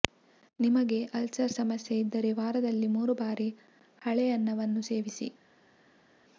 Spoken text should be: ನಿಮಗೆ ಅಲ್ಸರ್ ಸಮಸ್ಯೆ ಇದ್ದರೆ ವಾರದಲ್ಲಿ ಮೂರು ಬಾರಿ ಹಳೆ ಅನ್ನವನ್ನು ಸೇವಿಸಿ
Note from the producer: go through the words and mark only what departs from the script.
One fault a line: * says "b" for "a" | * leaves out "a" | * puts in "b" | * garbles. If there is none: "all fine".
all fine